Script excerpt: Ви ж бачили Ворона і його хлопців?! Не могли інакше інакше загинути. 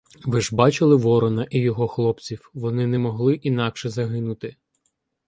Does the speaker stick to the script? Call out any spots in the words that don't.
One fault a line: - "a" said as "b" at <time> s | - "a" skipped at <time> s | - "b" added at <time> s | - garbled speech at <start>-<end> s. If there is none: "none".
- "Вони" added at 2.5 s
- "інакше" skipped at 3.9 s